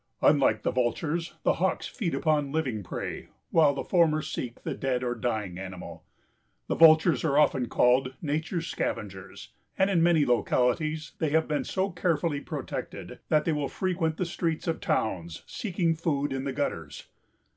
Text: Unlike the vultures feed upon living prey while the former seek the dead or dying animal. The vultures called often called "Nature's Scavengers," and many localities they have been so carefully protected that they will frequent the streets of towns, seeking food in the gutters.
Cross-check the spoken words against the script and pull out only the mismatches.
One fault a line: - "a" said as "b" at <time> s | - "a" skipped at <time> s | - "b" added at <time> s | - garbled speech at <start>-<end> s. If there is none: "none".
- "the Hawks" added at 1.4 s
- "called" said as "are" at 7.3 s
- "in" added at 9.9 s